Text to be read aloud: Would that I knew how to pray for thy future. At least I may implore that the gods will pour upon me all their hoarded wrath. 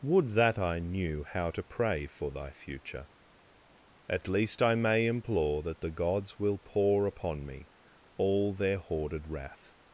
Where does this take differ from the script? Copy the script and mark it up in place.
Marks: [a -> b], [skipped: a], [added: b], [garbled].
Would that I knew how to pray for thy future. At least I may implore that the gods will pour upon me all their hoarded wrath.